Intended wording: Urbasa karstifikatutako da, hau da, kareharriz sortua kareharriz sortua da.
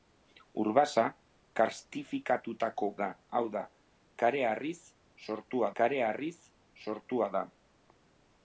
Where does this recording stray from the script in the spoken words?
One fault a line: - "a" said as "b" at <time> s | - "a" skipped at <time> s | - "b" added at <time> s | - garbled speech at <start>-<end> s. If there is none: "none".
none